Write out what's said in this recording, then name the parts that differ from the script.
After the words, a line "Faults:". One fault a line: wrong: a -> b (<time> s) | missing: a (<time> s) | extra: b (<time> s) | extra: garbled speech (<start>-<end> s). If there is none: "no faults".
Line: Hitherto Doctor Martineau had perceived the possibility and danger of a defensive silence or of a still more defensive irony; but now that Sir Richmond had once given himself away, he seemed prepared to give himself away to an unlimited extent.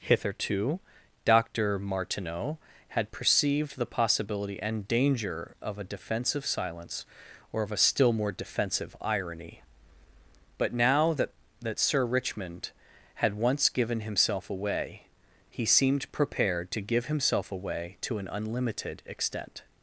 Hitherto Doctor Martineau had perceived the possibility and danger of a defensive silence or of a still more defensive irony; but now that that Sir Richmond had once given himself away, he seemed prepared to give himself away to an unlimited extent.
Faults:
extra: that (11.6 s)